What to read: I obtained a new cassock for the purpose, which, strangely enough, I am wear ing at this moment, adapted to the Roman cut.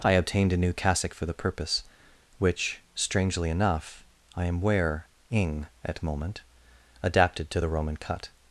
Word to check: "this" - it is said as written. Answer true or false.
false